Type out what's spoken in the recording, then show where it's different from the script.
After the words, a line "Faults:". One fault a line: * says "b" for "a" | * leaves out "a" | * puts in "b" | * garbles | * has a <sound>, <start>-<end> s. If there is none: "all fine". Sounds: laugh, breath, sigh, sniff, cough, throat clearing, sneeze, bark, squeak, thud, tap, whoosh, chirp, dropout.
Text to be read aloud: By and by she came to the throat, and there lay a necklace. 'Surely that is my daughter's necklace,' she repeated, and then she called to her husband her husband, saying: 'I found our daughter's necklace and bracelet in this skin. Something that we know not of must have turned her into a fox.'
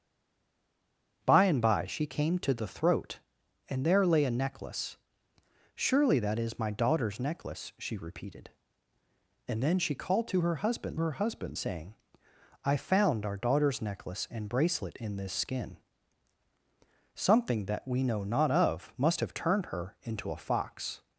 By and by she came to the throat, and there lay a necklace. 'Surely that is my daughter's necklace,' she repeated, and then she called to her husband her husband, saying: 'I found our daughter's necklace and bracelet in this skin. Something that we know not of must have turned her into a fox.'
Faults:
all fine